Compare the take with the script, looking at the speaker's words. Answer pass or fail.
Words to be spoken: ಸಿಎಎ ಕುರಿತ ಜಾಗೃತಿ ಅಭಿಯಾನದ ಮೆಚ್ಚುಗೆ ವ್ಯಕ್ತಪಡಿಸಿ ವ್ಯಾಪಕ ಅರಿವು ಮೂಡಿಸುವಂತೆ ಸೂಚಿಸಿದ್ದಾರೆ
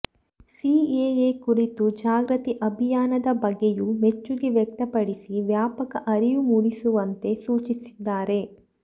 fail